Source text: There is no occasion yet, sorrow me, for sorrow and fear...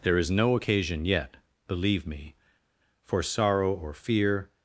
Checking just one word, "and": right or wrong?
wrong